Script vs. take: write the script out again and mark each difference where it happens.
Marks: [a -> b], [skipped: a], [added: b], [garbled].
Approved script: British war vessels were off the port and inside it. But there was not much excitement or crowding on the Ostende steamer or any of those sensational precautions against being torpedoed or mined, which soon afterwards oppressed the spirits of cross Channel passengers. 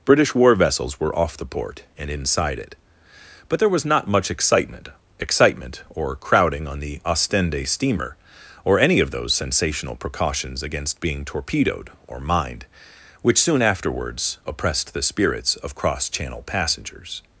British war vessels were off the port and inside it. But there was not much excitement [added: excitement] or crowding on the Ostende steamer or any of those sensational precautions against being torpedoed or mined, which soon afterwards oppressed the spirits of cross Channel passengers.